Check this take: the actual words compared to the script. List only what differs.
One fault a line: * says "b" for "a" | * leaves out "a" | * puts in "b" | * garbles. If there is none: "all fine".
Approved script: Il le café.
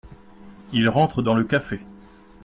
* puts in "rentre dans"